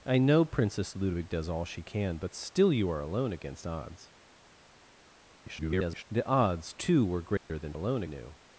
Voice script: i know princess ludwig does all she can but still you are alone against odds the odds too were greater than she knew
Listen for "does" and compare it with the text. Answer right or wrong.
right